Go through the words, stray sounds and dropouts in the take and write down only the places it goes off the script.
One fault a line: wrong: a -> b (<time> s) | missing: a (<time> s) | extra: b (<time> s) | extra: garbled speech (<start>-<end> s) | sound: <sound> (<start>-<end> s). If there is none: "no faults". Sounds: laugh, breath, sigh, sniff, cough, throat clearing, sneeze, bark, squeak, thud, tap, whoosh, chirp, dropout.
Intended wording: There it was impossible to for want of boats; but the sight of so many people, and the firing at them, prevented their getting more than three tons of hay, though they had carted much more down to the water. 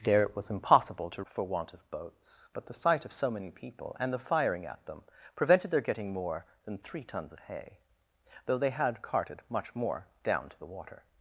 no faults